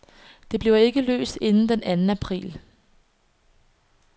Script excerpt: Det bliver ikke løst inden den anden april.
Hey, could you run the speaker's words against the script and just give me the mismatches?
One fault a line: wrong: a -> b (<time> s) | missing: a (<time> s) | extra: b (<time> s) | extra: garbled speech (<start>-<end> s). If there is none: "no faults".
no faults